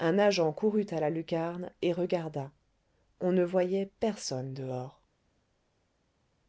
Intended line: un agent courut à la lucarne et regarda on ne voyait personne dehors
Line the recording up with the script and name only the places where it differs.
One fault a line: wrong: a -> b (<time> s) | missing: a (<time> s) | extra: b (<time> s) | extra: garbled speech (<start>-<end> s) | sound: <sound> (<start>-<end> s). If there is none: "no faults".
no faults